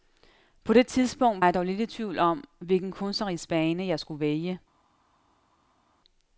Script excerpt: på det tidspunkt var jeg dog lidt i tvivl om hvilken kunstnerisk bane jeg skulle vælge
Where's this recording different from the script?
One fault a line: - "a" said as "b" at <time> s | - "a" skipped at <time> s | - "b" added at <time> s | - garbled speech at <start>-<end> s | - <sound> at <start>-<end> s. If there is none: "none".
- "var" skipped at 1.4 s